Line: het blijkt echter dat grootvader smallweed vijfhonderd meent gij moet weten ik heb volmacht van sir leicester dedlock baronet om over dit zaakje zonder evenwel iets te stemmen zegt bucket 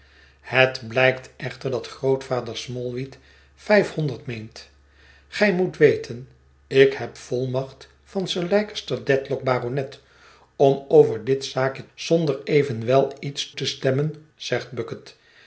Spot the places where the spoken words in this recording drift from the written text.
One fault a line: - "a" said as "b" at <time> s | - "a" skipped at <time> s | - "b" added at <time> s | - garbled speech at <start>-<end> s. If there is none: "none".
none